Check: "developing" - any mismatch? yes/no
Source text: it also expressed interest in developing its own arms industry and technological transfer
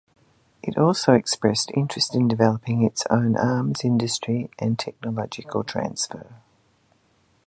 no